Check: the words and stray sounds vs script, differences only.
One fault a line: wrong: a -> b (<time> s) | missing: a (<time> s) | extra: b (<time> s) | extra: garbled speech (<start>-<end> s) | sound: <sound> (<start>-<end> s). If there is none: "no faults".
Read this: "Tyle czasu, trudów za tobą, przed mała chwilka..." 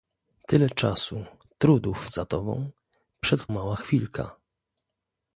no faults